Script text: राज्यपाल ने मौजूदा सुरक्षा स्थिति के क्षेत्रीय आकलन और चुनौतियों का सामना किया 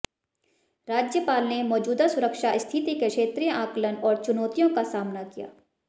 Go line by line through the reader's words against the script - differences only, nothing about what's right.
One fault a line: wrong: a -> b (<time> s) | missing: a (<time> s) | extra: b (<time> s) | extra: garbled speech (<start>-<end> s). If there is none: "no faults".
no faults